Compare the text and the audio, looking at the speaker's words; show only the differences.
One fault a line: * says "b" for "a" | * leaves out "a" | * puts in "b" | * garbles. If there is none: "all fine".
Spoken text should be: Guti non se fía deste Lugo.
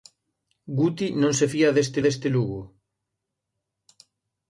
* puts in "deste"